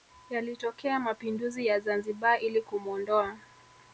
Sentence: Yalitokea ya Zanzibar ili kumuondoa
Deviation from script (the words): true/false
true